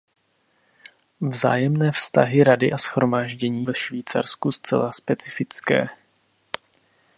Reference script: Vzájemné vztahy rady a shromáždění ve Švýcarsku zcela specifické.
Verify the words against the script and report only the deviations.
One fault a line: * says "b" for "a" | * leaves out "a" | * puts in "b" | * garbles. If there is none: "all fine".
all fine